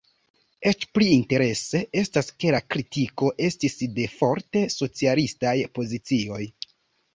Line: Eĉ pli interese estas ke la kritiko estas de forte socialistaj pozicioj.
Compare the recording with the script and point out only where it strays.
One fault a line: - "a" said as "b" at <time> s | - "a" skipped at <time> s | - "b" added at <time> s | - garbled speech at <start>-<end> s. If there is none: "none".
- "estas" said as "estis" at 3.5 s